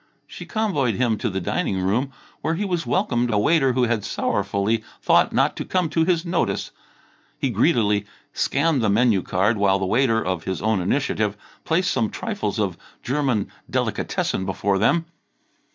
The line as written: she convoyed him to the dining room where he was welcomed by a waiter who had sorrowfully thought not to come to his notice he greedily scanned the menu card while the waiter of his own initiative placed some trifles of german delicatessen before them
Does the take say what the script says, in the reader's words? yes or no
no